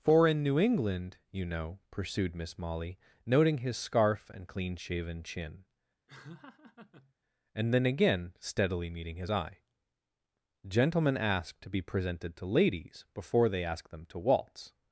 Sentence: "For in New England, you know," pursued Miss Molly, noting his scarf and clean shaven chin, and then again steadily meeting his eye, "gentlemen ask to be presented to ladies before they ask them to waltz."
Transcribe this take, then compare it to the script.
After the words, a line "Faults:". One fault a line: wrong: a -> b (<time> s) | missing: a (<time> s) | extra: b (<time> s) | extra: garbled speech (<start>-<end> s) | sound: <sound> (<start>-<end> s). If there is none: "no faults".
"For in New England, you know," pursued Miss Molly, noting his scarf and clean shaven chin, and then again steadily meeting his eye, "gentlemen ask to be presented to ladies before they ask them to waltz."
Faults:
sound: laugh (6.1-7.1 s)